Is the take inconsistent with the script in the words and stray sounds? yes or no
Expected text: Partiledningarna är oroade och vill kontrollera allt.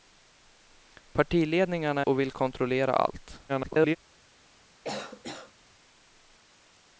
yes